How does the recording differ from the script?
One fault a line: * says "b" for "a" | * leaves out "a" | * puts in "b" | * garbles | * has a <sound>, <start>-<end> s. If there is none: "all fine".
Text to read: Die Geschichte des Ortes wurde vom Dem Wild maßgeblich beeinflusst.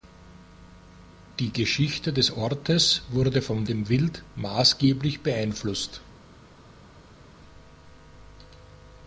all fine